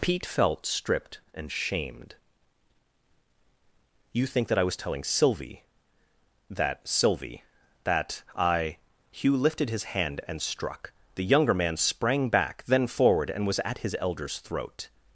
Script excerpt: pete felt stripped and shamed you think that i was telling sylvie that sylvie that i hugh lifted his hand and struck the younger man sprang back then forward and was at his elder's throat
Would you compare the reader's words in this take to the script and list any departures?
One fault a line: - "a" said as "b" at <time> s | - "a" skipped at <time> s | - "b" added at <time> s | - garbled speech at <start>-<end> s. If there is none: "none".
none